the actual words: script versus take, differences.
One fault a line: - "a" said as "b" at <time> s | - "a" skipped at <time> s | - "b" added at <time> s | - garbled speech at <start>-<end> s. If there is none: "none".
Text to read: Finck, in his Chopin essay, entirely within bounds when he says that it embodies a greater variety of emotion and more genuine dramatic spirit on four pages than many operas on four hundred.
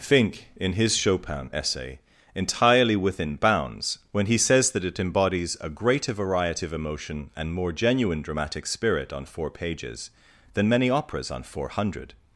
none